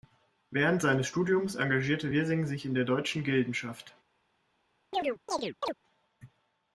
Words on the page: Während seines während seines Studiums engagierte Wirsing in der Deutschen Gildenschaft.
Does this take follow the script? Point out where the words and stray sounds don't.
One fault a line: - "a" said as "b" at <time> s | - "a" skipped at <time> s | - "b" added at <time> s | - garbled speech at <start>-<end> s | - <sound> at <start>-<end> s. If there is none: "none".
- "während seines" skipped at 1.1 s
- "sich" added at 2.5 s
- chirp at 4.9-5.7 s